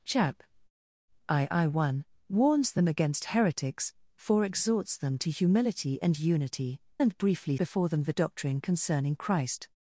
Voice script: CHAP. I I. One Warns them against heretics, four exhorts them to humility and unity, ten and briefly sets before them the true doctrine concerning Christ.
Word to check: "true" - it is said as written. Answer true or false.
false